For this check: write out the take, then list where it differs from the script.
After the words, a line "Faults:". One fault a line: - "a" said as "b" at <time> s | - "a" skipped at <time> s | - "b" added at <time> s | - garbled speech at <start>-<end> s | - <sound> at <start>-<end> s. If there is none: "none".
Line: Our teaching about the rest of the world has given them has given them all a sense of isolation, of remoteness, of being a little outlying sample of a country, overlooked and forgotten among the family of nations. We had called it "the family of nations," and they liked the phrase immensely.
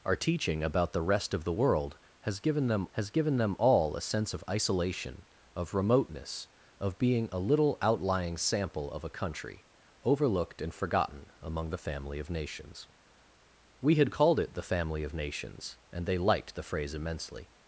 Our teaching about the rest of the world has given them has given them all a sense of isolation, of remoteness, of being a little outlying sample of a country, overlooked and forgotten among the family of nations. We had called it "the family of nations," and they liked the phrase immensely.
Faults:
none